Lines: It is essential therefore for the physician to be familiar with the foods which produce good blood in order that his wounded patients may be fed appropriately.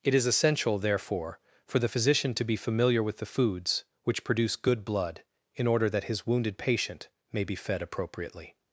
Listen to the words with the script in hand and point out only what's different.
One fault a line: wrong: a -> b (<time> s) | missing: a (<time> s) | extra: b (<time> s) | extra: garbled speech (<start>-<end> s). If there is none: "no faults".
wrong: patients -> patient (6.6 s)